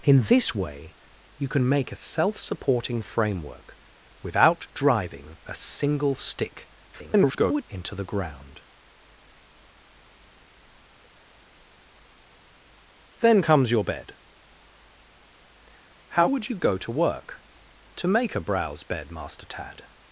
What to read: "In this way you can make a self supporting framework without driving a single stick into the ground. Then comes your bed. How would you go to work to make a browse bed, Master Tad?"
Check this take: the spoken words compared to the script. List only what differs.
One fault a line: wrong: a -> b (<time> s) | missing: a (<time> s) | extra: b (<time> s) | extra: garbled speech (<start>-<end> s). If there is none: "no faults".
extra: garbled speech (6.9-7.6 s)